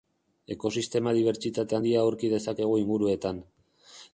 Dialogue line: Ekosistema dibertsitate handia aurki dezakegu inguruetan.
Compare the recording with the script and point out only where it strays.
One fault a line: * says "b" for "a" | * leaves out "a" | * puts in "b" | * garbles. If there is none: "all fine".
all fine